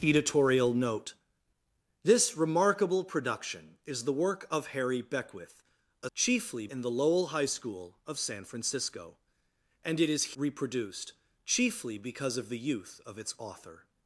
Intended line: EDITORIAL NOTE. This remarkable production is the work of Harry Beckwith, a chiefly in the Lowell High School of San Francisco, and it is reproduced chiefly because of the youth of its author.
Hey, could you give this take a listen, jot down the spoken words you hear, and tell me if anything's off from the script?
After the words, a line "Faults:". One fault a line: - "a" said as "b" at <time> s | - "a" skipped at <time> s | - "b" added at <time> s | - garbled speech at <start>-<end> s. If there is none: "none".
EDITORIAL NOTE. This remarkable production is the work of Harry Beckwith, a chiefly in the Lowell High School of San Francisco, and it is reproduced chiefly because of the youth of its author.
Faults:
none